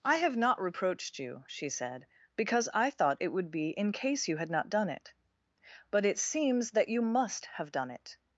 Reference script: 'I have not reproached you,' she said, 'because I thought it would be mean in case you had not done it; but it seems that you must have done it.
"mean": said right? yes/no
no